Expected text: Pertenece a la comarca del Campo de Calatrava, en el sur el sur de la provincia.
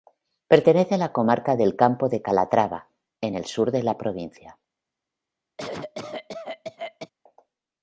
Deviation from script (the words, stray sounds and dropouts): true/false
true